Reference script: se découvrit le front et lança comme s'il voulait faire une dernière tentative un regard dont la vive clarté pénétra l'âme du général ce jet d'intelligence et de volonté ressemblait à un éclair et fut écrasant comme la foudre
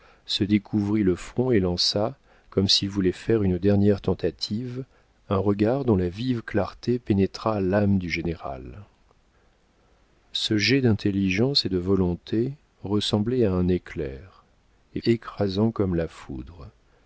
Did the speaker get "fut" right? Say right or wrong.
wrong